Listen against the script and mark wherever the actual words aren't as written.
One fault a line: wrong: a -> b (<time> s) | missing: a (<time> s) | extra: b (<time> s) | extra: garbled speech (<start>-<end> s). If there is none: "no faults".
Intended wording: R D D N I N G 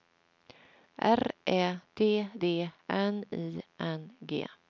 extra: Ä (1.4 s)